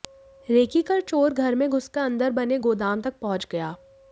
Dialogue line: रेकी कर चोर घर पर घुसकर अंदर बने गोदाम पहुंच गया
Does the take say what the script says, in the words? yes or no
no